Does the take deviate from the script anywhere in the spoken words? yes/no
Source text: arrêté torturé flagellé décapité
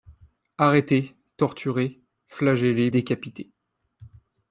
no